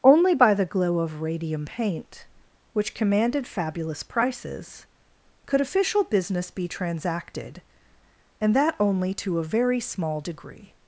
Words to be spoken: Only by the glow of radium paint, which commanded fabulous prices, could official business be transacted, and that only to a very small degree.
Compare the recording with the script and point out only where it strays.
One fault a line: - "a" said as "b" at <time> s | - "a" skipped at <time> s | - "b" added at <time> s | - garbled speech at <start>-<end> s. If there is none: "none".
none